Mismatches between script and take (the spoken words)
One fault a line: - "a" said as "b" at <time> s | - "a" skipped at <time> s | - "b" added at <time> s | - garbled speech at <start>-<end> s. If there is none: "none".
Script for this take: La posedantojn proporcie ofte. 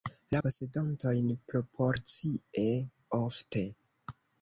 none